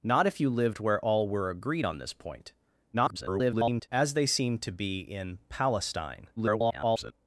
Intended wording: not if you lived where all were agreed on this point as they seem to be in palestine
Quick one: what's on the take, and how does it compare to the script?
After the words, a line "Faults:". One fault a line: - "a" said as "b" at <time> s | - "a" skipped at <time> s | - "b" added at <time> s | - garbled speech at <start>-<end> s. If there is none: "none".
not if you lived where all were agreed on this point [garbled] as they seem to be in palestine [garbled]
Faults:
- garbled speech at 2.9-3.9 s
- garbled speech at 6.4-7.1 s